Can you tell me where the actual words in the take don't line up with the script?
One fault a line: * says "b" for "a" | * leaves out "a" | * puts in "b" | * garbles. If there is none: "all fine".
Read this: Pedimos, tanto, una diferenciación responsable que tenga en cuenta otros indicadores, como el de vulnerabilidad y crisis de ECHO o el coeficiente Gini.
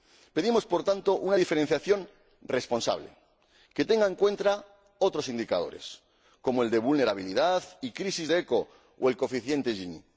* puts in "por"